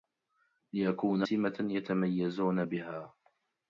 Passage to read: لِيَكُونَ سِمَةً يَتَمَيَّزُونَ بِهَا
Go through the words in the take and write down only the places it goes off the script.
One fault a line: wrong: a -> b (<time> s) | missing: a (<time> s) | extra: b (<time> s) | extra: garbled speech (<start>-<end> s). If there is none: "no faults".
no faults